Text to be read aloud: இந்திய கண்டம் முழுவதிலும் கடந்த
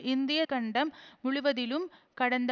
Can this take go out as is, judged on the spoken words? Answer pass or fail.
pass